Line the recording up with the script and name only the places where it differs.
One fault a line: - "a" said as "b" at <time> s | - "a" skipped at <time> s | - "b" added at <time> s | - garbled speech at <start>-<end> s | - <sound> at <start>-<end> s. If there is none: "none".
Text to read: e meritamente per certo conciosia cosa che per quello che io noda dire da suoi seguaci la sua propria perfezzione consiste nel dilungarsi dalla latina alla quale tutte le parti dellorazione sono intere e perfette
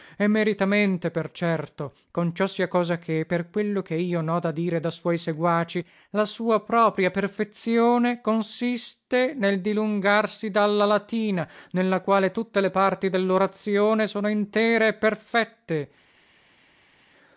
- "alla" said as "nella" at 11.7 s